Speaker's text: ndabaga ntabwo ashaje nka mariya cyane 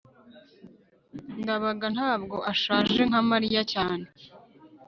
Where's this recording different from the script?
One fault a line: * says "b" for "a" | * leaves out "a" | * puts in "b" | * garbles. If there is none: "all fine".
all fine